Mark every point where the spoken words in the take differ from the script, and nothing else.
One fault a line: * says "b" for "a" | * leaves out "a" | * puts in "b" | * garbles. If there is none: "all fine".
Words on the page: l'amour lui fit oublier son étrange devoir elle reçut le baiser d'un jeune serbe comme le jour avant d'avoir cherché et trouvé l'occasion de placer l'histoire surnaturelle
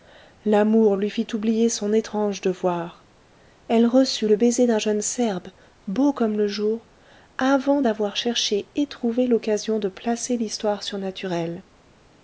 * puts in "beau"